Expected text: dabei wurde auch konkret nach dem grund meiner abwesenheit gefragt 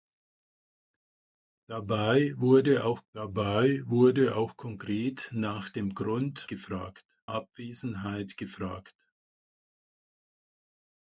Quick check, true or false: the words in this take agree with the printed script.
false